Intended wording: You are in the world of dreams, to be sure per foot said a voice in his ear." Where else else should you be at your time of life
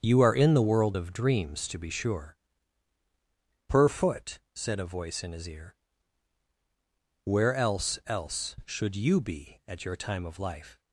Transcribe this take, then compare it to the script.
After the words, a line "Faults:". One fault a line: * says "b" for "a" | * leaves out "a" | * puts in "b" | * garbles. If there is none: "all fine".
You are in the world of dreams, to be sure per foot said a voice in his ear." Where else else should you be at your time of life
Faults:
all fine